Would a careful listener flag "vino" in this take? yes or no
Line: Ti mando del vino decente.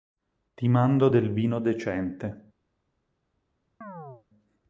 no